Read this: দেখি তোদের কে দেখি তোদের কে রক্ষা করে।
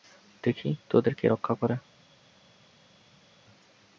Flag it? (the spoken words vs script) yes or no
yes